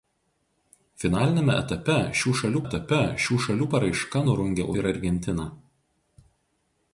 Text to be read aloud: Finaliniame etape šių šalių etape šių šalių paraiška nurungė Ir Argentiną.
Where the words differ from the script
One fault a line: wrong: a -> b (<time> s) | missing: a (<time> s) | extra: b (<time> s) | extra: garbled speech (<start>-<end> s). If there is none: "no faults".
no faults